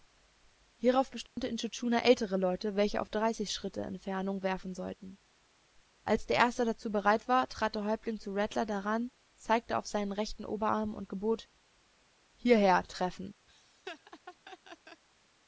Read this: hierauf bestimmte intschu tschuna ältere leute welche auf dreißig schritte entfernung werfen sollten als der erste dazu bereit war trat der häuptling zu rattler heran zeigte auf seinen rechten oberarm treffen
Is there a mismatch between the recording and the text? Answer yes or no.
yes